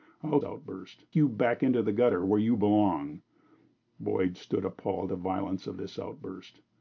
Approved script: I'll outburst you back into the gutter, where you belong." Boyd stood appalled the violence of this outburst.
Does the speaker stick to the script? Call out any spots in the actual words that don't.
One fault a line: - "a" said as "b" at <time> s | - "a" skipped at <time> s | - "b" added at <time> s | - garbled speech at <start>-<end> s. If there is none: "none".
none